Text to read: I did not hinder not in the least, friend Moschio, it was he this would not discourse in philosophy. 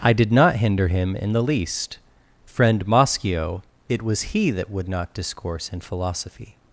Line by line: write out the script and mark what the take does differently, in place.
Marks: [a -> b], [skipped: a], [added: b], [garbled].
I did not hinder [not -> him] in the least, friend Moschio, it was he [this -> that] would not discourse in philosophy.